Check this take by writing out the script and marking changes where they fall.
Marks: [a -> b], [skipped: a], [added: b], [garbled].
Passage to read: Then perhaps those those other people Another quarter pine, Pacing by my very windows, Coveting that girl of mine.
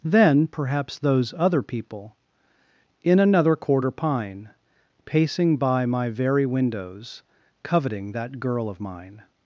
Then perhaps those [skipped: those] other people [added: In] Another quarter pine, Pacing by my very windows, Coveting that girl of mine.